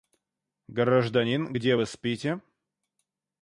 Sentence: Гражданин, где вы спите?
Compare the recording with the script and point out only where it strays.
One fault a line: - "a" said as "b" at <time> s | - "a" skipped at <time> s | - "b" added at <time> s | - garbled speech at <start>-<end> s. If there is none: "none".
none